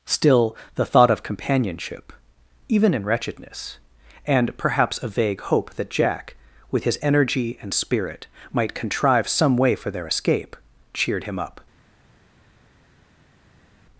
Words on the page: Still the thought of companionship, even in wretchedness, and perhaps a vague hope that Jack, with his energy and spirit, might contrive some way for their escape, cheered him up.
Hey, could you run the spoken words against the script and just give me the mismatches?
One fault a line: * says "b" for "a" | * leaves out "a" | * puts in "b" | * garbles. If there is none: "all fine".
all fine